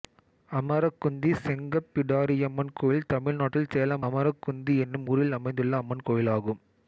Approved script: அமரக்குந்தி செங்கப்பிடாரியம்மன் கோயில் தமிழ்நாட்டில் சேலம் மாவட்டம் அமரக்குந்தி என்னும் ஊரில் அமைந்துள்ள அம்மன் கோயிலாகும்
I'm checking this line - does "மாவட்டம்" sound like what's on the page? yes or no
no